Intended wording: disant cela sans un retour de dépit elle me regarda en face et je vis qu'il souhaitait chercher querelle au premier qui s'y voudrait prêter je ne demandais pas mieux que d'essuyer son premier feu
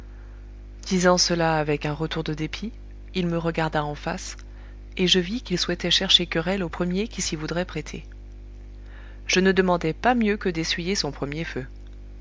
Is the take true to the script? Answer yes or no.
no